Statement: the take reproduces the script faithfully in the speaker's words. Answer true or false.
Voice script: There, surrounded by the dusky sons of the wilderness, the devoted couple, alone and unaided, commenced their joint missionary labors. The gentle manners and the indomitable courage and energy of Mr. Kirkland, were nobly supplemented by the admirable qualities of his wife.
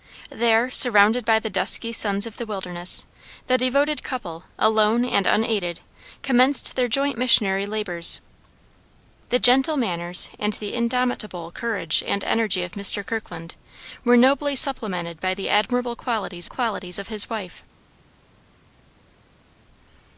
false